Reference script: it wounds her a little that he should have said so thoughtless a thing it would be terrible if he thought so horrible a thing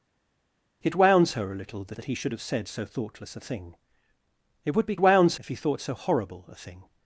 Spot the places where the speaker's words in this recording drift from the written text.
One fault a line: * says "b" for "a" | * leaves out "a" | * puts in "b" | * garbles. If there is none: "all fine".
* puts in "that"
* says "wounds" for "terrible"